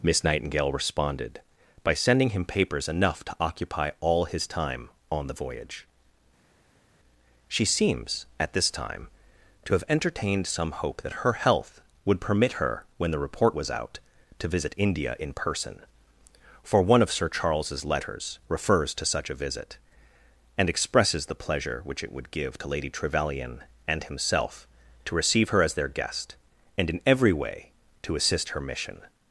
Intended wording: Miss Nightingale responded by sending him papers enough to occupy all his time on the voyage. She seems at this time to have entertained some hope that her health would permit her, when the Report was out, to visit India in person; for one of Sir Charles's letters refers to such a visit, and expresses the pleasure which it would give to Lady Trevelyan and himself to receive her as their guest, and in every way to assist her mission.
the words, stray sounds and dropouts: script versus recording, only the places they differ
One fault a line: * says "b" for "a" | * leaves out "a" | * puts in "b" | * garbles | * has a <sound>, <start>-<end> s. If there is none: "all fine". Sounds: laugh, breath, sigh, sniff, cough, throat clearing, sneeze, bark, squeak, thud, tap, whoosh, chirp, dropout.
all fine